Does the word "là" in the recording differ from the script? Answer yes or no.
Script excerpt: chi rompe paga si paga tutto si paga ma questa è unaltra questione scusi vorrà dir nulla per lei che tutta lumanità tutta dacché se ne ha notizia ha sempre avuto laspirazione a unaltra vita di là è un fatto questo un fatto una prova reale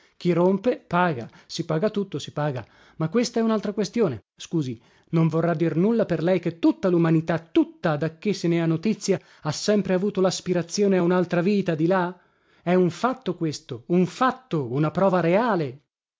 no